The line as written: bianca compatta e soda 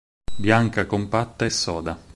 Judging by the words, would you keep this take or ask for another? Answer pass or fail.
pass